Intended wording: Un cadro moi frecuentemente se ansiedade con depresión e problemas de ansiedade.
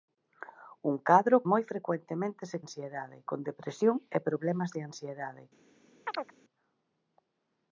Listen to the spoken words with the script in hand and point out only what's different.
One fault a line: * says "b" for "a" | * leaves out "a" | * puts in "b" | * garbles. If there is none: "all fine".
all fine